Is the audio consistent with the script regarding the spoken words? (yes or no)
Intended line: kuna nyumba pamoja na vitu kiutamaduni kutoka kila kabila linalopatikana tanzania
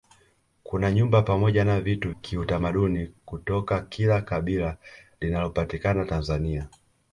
yes